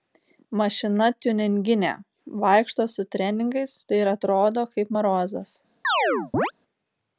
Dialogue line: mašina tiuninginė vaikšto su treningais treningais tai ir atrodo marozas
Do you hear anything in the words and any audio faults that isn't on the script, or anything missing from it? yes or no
yes